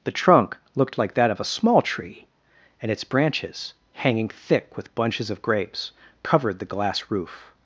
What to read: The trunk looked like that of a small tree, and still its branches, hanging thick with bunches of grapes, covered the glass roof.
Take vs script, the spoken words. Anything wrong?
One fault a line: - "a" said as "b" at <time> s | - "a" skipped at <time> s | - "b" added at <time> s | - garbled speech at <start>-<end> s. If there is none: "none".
- "still" skipped at 2.9 s